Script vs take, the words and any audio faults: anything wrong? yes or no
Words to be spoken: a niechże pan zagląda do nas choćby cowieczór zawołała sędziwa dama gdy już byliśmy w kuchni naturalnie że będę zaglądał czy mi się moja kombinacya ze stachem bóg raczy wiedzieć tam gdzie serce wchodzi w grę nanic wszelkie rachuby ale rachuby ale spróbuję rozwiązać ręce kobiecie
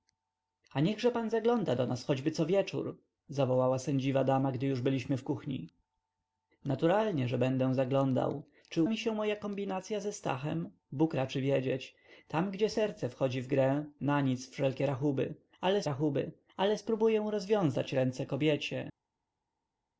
no